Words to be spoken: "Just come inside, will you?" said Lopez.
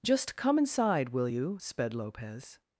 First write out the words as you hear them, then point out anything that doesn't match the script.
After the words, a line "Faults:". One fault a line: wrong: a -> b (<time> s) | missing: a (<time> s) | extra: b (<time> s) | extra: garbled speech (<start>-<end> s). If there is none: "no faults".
"Just come inside, will you?" sped Lopez.
Faults:
wrong: said -> sped (1.6 s)